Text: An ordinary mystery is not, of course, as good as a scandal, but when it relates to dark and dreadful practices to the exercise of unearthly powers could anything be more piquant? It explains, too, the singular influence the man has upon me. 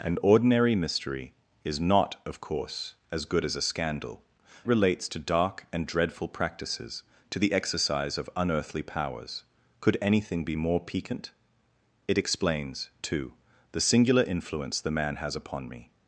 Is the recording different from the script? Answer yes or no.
yes